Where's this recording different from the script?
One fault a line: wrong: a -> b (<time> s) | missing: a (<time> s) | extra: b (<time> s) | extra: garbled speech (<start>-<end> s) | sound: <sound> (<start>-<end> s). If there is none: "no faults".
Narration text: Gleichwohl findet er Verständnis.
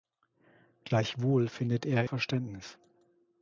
no faults